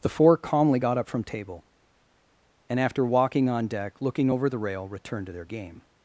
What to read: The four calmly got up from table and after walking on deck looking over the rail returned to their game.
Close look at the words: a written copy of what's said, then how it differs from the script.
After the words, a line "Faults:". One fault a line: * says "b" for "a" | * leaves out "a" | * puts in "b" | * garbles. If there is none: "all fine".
The four calmly got up from table and after walking on deck looking over the rail returned to their game.
Faults:
all fine